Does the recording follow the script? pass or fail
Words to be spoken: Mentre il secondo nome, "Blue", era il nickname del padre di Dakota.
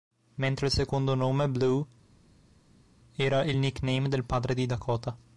pass